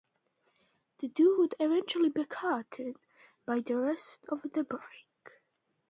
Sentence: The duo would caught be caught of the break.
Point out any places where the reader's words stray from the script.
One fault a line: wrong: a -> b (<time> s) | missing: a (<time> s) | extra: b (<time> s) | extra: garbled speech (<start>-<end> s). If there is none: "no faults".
wrong: caught -> eventually (1.6 s)
extra: by the rest (3.4 s)